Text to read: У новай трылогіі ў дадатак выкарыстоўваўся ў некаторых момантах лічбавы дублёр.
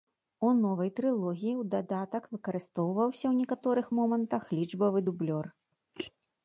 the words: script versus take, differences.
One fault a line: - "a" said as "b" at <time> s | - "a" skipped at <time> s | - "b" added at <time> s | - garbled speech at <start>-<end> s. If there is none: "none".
none